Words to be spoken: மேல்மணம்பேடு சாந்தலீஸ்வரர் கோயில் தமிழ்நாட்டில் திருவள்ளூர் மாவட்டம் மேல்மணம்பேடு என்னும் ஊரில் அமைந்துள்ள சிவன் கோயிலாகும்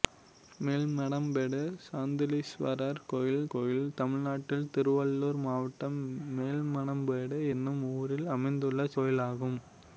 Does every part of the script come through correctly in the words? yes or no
no